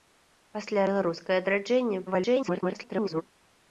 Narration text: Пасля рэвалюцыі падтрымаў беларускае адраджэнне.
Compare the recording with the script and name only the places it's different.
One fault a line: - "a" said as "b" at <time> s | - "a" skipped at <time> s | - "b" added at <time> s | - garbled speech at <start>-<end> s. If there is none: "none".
- "рэвалюцыі падтрымаў" skipped at 0.8 s
- garbled speech at 2.1-3.2 s